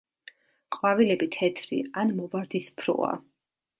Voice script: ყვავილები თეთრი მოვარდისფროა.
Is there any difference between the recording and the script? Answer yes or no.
yes